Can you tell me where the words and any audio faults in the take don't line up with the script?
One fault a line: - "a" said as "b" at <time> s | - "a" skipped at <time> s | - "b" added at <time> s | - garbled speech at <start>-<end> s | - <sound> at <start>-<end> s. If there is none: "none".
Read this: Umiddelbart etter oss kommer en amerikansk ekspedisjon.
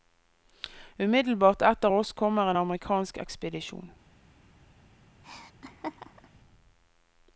- laugh at 5.2-6.3 s